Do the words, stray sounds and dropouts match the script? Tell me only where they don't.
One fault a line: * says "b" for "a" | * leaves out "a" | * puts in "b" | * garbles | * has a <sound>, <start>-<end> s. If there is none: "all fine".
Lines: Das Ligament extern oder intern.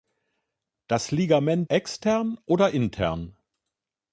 all fine